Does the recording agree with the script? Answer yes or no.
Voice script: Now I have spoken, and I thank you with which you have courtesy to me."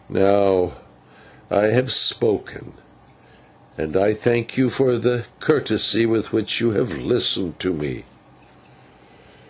no